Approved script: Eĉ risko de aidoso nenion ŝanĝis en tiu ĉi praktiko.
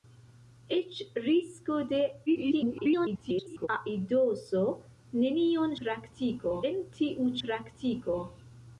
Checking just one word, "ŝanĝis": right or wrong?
wrong